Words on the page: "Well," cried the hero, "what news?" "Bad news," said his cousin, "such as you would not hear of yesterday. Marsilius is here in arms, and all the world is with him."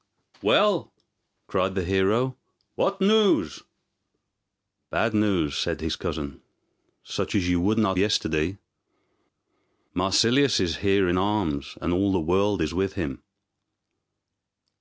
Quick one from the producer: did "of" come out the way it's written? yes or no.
no